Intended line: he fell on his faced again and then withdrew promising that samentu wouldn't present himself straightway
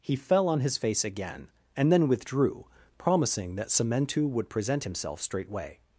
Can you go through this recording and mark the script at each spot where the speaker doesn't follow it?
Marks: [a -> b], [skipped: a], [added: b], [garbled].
he fell on his [faced -> face] again and then withdrew promising that samentu [wouldn't -> would] present himself straightway